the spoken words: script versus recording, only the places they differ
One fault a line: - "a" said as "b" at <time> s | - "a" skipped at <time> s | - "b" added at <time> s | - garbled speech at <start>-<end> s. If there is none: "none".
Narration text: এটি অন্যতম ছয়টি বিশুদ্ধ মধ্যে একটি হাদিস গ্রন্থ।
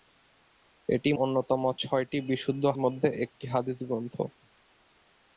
none